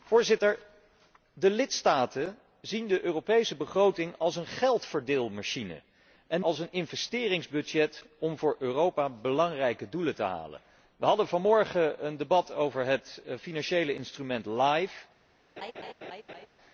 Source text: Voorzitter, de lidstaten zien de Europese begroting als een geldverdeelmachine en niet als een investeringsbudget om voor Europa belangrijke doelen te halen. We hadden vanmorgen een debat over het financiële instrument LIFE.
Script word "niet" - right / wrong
wrong